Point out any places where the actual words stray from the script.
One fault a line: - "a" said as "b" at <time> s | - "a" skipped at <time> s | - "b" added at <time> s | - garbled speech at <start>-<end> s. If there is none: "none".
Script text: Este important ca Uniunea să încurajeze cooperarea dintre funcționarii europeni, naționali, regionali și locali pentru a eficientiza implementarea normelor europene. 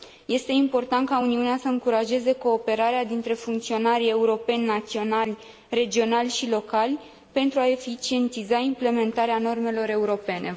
none